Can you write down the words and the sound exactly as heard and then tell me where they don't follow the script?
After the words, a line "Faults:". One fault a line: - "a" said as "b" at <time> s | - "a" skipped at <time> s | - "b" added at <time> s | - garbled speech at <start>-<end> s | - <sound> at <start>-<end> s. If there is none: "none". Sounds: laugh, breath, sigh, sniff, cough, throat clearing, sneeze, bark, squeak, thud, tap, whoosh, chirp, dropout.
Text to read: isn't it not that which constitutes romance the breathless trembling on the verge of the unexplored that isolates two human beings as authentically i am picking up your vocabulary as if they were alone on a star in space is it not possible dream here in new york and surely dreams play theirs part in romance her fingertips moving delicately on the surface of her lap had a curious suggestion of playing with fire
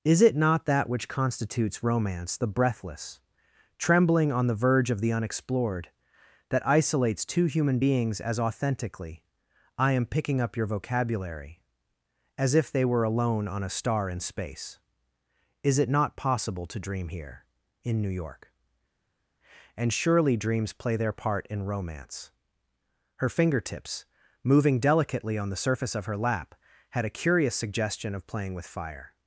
is it not that which constitutes romance the breathless trembling on the verge of the unexplored that isolates two human beings as authentically i am picking up your vocabulary as if they were alone on a star in space is it not possible to dream here in new york and surely dreams play their part in romance her fingertips moving delicately on the surface of her lap had a curious suggestion of playing with fire
Faults:
- "isn't" said as "is" at 0.0 s
- "to" added at 16.7 s
- "theirs" said as "their" at 21.0 s